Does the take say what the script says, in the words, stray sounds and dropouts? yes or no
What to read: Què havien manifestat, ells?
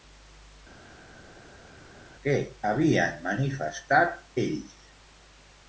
yes